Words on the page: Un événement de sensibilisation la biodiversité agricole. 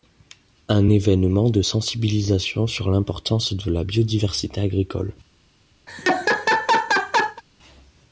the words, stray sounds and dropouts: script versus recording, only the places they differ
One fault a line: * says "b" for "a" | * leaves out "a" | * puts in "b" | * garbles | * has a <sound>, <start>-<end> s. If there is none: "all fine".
* puts in "sur l'importance de"
* has a laugh, 5.9-7.4 s